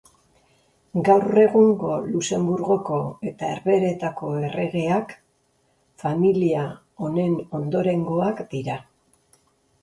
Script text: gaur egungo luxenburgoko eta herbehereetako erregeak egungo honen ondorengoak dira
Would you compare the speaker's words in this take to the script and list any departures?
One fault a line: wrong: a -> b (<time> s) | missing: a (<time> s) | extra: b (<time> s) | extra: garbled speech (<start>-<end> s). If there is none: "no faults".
wrong: egungo -> familia (6.0 s)